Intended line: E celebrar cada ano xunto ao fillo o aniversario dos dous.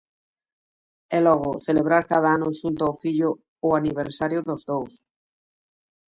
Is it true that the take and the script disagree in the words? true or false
true